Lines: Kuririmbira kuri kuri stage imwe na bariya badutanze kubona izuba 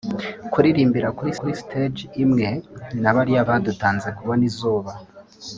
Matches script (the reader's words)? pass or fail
pass